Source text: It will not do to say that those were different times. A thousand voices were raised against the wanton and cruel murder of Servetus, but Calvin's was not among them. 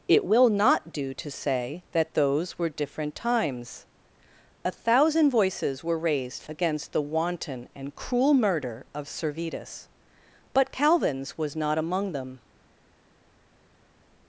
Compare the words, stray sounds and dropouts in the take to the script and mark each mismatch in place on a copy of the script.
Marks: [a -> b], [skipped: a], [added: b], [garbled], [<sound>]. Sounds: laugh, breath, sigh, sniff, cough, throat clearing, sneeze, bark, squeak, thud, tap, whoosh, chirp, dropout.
It will not do to say that those were different times. A thousand voices were raised against the wanton and cruel murder of Servetus, but Calvin's was not among them.